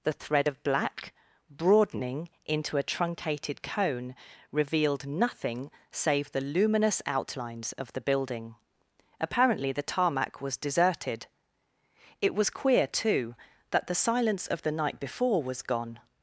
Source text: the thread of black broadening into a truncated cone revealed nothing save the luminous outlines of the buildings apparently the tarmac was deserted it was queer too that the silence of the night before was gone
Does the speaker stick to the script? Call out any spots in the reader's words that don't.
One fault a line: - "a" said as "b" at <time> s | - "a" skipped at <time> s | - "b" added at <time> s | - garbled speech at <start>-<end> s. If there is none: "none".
- "buildings" said as "building" at 8.0 s